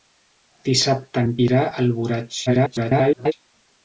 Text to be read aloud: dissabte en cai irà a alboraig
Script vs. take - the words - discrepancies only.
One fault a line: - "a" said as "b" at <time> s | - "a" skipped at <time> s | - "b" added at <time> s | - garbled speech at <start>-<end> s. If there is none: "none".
- "cai" skipped at 1.3 s
- garbled speech at 2.5-3.3 s